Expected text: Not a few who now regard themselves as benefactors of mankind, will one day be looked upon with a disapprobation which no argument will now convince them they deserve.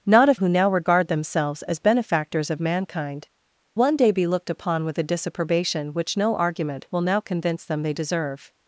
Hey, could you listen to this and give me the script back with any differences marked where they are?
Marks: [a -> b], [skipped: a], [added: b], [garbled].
Not a [skipped: few] who now regard themselves as benefactors of mankind, [skipped: will] one day be looked upon with a disapprobation which no argument will now convince them they deserve.